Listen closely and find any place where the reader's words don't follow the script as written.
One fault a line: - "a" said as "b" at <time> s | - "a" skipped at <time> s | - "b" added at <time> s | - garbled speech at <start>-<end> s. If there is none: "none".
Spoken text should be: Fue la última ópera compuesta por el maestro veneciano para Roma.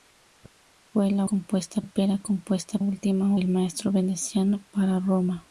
- "última" said as "compuesta" at 1.2 s
- "por" said as "última" at 2.8 s